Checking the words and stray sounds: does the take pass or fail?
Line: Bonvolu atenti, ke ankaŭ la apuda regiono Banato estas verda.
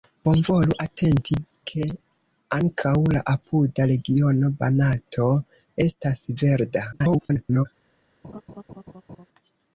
fail